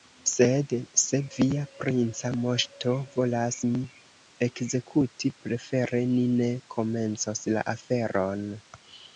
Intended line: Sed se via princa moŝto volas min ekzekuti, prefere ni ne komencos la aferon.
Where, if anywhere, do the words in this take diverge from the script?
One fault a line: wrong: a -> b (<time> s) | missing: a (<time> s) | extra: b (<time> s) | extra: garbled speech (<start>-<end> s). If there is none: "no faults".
no faults